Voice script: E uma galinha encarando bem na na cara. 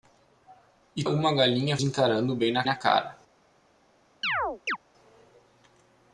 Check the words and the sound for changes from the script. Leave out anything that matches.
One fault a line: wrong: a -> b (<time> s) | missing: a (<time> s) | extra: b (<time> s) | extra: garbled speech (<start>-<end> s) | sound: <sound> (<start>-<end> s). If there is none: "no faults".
sound: chirp (4.2-4.8 s)